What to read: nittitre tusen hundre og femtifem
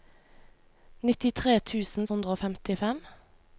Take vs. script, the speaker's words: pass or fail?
pass